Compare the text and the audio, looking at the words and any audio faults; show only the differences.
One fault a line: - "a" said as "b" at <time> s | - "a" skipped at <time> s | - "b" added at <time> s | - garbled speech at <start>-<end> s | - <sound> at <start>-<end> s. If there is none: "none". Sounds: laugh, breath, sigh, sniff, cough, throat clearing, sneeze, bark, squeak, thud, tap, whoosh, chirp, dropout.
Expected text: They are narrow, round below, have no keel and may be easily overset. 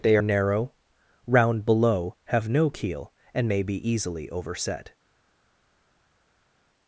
- "are" skipped at 0.2 s